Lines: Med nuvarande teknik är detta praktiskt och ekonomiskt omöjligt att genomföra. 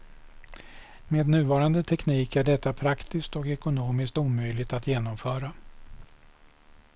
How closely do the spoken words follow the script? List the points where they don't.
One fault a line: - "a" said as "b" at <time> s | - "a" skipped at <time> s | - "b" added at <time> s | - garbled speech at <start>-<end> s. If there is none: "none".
none